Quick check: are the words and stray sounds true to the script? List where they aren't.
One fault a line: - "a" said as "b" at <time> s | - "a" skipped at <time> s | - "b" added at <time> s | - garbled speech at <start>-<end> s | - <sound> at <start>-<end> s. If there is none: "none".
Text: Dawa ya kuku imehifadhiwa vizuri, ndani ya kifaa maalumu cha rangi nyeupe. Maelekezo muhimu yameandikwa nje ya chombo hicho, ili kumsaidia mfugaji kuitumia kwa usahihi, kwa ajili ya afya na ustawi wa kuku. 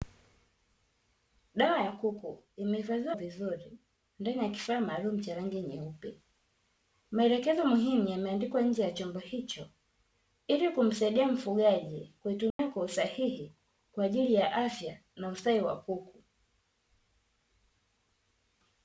- dropout at 12.5-12.6 s